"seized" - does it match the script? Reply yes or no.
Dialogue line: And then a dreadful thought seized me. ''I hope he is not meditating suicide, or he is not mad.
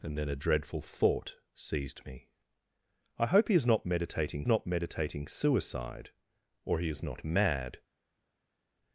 yes